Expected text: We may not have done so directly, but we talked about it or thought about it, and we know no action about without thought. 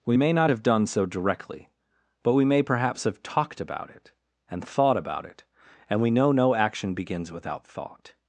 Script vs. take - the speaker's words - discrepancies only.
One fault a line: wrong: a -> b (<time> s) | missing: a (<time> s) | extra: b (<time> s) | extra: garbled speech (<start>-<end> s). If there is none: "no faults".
extra: may perhaps have (2.4 s)
wrong: or -> and (4.5 s)
wrong: about -> begins (6.9 s)